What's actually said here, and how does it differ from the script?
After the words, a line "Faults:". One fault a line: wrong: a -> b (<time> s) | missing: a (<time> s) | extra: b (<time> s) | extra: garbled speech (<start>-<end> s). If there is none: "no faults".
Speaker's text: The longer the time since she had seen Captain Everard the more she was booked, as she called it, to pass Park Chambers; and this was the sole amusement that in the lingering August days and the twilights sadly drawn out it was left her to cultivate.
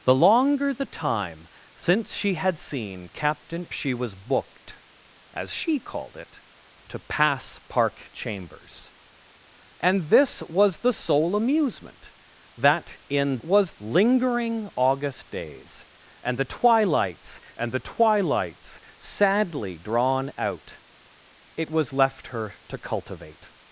The longer the time since she had seen Captain She was booked, as she called it, to pass Park Chambers; and this was the sole amusement that in was lingering August days and the twilights and the twilights sadly drawn out it was left her to cultivate.
Faults:
missing: Everard the more (3.7 s)
wrong: the -> was (13.4 s)
extra: and the twilights (17.6 s)